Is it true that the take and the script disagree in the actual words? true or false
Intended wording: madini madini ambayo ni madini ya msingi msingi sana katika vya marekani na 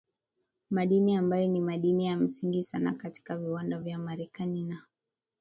true